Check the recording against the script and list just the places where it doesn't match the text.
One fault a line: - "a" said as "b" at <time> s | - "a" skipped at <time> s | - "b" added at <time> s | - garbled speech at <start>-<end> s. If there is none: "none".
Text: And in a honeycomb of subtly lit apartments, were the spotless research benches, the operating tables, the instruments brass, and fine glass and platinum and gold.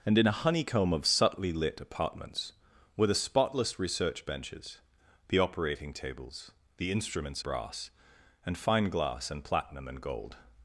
none